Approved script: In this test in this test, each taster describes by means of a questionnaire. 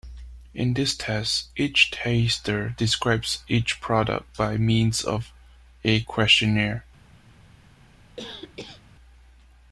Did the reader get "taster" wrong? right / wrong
wrong